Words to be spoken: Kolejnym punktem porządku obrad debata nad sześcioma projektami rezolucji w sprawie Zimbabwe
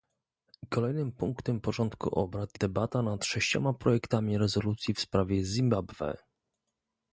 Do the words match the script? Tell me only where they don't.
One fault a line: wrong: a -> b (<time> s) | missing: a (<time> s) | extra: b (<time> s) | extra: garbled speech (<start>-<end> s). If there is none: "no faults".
no faults